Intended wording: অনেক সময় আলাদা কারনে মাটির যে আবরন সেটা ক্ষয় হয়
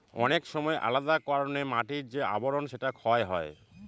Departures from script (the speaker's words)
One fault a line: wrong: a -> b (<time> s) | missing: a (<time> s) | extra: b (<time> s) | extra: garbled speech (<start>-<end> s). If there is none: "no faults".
no faults